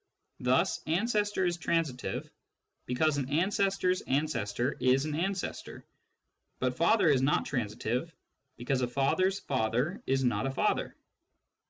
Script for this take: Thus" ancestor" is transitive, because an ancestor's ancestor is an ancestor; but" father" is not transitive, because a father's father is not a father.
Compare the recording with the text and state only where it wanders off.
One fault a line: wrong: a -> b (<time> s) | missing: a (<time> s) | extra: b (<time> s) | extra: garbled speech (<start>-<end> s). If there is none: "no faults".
no faults